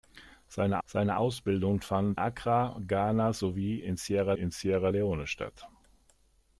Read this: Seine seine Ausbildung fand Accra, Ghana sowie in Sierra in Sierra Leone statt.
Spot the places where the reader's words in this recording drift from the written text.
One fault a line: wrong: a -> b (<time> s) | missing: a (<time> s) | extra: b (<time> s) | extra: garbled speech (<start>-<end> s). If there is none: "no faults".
no faults